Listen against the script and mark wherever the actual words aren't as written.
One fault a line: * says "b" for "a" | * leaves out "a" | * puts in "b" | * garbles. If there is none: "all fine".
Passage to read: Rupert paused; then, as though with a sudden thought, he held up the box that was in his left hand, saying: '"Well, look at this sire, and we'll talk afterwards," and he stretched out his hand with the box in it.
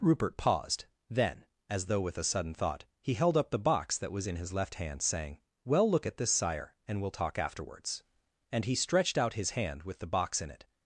all fine